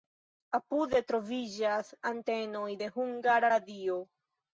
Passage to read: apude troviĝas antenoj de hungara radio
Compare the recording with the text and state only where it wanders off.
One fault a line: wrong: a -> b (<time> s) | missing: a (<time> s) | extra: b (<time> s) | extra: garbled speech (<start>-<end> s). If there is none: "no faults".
no faults